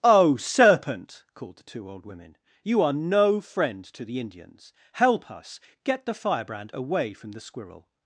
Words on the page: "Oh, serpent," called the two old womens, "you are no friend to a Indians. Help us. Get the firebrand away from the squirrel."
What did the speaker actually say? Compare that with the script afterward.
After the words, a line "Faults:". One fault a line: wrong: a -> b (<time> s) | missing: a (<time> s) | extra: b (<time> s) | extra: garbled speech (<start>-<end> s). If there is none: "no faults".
"Oh, serpent," called the two old women, "you are no friend to the Indians. Help us. Get the firebrand away from the squirrel."
Faults:
wrong: womens -> women (2.1 s)
wrong: a -> the (4.0 s)